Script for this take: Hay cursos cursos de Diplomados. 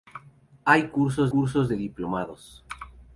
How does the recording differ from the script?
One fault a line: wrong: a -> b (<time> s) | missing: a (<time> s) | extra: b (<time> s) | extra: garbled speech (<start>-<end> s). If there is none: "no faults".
no faults